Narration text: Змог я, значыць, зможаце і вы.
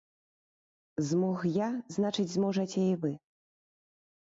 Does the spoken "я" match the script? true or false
true